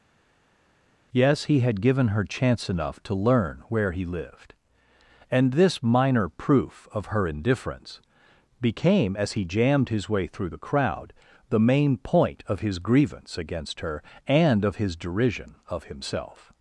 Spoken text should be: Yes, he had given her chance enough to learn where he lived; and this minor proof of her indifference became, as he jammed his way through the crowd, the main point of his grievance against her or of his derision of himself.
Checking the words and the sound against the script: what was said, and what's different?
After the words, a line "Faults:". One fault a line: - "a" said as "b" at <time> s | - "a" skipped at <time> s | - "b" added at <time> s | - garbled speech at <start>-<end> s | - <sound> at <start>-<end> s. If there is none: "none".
Yes, he had given her chance enough to learn where he lived; and this minor proof of her indifference became, as he jammed his way through the crowd, the main point of his grievance against her and of his derision of himself.
Faults:
- "or" said as "and" at 14.3 s